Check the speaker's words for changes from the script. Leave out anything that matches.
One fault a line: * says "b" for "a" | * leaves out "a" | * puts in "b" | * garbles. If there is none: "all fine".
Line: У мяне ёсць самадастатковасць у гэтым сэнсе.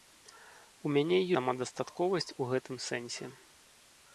* leaves out "ёсць"